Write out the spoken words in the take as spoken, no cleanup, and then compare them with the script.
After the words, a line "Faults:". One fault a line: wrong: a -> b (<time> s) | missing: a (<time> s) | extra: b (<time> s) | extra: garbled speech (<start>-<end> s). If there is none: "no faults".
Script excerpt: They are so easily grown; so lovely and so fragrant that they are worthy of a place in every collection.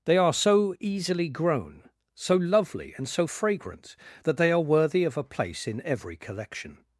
They are so easily grown; so lovely and so fragrant that they are worthy of a place in every collection.
Faults:
no faults